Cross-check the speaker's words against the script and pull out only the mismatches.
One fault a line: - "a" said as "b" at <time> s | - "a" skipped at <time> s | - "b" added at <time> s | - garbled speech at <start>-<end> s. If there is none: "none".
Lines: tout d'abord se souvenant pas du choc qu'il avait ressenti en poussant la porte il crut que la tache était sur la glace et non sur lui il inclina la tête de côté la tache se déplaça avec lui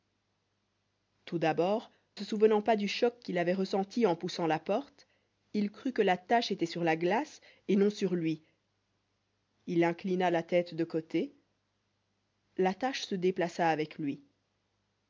none